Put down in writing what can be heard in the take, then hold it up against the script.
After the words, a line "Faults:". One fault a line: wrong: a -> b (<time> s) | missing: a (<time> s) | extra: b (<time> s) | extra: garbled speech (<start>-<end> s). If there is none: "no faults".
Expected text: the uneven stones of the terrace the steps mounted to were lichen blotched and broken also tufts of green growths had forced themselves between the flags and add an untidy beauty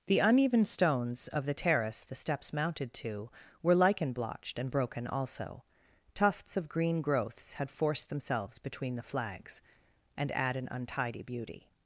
the uneven stones of the terrace the steps mounted to were lichen blotched and broken also tufts of green growths had forced themselves between the flags and add an untidy beauty
Faults:
no faults